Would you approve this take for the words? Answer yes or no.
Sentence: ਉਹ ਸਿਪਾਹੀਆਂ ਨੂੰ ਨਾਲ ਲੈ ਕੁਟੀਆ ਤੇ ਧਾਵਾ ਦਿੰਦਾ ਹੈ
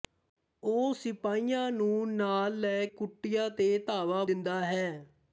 yes